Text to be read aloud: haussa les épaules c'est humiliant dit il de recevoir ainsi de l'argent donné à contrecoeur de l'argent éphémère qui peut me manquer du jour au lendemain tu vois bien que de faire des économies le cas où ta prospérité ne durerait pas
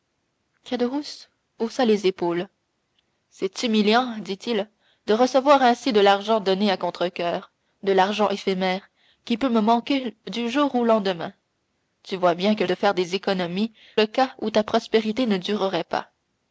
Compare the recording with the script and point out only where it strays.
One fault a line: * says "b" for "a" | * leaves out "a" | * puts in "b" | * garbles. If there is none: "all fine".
all fine